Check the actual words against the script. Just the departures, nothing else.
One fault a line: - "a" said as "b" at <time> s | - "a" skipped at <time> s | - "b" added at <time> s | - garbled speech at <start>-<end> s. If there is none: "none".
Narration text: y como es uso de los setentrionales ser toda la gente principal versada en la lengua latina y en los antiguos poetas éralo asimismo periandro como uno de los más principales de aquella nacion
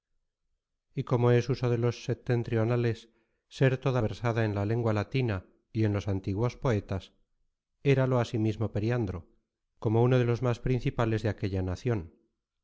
- "la gente principal" skipped at 4.0 s